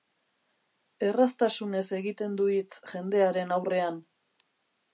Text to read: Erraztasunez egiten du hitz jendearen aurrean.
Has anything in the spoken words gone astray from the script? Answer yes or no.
no